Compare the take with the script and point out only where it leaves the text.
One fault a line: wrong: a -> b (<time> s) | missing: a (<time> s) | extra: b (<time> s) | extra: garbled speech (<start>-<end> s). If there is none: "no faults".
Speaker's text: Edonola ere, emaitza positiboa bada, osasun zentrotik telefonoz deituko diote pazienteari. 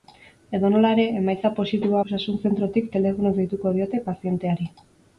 missing: bada (2.0 s)